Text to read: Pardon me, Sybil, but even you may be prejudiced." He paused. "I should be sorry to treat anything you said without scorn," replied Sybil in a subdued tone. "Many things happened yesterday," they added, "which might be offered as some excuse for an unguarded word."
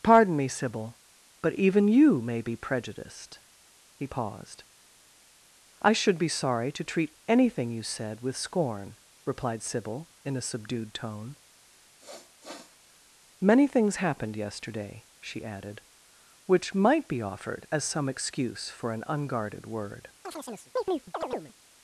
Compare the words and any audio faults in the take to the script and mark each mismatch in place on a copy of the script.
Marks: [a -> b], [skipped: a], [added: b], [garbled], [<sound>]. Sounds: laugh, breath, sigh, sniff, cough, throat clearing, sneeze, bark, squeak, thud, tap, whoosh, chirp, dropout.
Pardon me, Sybil, but even you may be prejudiced." He paused. "I should be sorry to treat anything you said [without -> with] scorn," replied Sybil in a subdued tone. [sniff] "Many things happened yesterday," [they -> she] added, "which might be offered as some excuse for an unguarded word." [chirp]